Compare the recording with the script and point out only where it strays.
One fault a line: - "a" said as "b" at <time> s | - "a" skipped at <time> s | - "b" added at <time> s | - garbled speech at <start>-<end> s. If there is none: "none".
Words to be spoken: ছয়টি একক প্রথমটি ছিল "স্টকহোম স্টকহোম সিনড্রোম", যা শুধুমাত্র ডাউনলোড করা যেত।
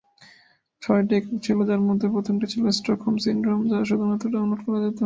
- "ছিল যার মধ্যে" added at 1.4 s
- "স্টকহোম" skipped at 3.1 s